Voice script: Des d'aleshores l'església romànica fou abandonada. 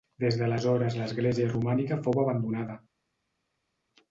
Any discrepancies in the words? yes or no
no